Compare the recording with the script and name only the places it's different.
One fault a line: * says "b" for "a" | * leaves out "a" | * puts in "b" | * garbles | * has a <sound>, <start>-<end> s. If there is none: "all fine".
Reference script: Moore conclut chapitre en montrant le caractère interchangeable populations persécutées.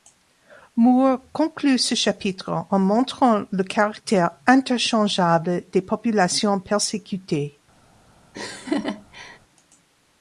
* puts in "ce"
* puts in "des"
* has a laugh, 8.3-9.4 s